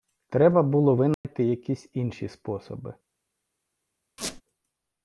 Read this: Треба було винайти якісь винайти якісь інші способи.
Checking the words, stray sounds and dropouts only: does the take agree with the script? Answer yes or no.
no